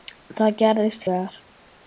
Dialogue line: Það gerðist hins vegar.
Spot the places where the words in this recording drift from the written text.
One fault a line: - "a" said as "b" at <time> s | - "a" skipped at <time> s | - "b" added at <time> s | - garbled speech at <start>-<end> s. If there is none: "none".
- "hins" skipped at 1.1 s